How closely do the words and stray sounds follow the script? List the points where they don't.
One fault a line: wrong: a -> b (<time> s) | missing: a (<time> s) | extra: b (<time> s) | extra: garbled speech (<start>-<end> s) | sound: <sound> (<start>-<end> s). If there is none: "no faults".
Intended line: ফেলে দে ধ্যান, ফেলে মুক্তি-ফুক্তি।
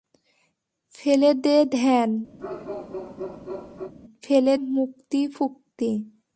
sound: bark (2.4-3.9 s)